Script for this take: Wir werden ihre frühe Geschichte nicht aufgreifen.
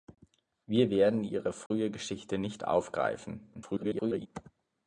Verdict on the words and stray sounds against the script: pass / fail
fail